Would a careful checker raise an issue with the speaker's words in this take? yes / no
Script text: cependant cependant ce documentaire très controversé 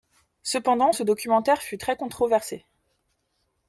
yes